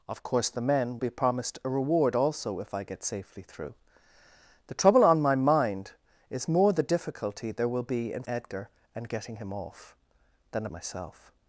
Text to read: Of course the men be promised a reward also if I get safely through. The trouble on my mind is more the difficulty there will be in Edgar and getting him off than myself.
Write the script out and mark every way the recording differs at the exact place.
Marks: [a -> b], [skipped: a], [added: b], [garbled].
Of course the men be promised a reward also if I get safely through. The trouble on my mind is more the difficulty there will be in Edgar and getting him off than myself.